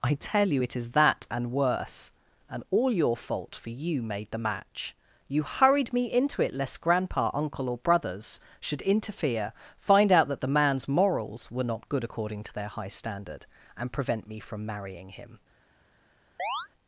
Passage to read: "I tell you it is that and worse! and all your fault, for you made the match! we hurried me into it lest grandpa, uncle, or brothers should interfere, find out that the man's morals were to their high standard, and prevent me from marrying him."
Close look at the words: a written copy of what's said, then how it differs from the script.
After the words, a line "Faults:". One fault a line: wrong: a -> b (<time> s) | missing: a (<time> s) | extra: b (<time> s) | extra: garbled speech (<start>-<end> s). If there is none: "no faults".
"I tell you it is that and worse! and all your fault, for you made the match! you hurried me into it lest grandpa, uncle, or brothers should interfere, find out that the man's morals were not good according to their high standard, and prevent me from marrying him."
Faults:
wrong: we -> you (5.3 s)
extra: not good according (11.7 s)